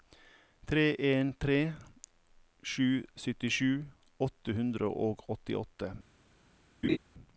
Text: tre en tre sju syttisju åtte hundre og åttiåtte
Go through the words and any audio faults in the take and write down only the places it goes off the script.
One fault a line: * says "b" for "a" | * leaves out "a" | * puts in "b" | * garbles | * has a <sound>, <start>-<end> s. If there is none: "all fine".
* has a laugh, 6.8-7.0 s